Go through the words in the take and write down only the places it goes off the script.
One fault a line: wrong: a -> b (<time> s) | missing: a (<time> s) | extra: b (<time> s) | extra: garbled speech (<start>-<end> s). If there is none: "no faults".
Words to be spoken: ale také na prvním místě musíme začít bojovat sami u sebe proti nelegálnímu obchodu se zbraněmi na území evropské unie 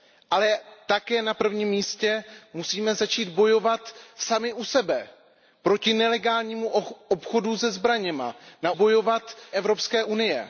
wrong: území -> bojovat (8.7 s)